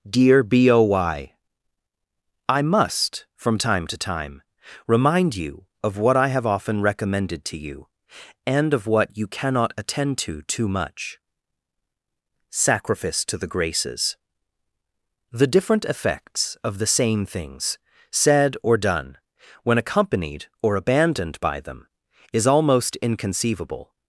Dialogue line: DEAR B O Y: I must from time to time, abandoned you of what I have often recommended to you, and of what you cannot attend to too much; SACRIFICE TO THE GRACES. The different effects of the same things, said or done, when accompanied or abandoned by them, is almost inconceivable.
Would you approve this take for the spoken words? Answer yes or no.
no